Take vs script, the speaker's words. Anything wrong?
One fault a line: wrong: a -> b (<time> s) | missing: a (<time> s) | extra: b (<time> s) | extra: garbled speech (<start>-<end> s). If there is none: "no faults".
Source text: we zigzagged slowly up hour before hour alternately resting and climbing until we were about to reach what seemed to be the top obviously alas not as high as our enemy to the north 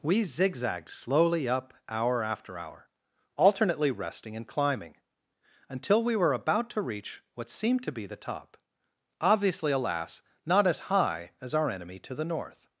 wrong: before -> after (2.2 s)